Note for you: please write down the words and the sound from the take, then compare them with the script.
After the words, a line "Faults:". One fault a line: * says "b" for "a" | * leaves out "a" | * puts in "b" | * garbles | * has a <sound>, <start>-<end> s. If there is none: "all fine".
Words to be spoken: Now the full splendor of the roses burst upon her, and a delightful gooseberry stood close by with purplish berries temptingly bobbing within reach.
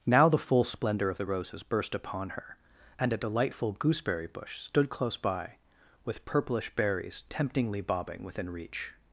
Now the full splendor of the roses burst upon her, and a delightful gooseberry bush stood close by with purplish berries temptingly bobbing within reach.
Faults:
* puts in "bush"